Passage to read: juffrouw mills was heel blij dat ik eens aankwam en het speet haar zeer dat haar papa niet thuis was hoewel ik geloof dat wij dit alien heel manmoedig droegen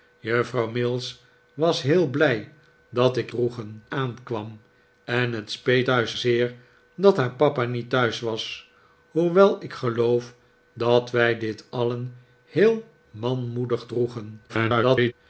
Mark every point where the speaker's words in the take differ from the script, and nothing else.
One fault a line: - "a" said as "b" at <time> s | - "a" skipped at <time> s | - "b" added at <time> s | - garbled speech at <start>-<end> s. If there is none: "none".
- "eens" said as "droegen" at 3.3 s
- "haar" said as "thuis" at 5.8 s
- garbled speech at 14.5-15.1 s